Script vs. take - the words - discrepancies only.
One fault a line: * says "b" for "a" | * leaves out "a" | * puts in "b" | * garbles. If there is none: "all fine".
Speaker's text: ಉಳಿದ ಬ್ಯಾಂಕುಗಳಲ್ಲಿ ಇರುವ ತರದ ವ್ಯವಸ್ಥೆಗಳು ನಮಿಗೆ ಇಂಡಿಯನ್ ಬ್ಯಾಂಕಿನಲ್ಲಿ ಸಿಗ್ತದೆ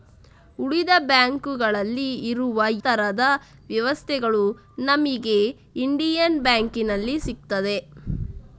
all fine